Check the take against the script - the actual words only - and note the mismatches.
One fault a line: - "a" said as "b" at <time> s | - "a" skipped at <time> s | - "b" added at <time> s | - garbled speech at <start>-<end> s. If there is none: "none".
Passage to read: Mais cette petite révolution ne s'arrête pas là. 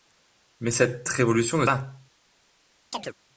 - "petite" skipped at 1.1 s
- "s'arrête pas" skipped at 1.7 s